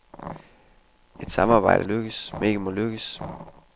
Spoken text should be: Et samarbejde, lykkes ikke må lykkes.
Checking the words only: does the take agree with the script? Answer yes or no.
yes